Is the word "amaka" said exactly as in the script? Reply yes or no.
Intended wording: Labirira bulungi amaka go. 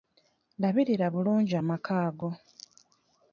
yes